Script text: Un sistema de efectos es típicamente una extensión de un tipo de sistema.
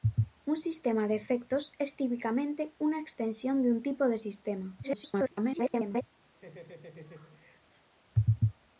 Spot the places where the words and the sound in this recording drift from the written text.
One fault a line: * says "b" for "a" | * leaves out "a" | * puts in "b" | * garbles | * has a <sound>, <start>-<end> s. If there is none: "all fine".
* garbles
* has a laugh, 6.3-7.9 s